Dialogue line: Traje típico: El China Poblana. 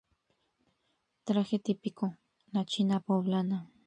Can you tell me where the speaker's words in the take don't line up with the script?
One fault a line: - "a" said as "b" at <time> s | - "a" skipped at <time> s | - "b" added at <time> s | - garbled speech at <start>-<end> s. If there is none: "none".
- "El" said as "La" at 2.5 s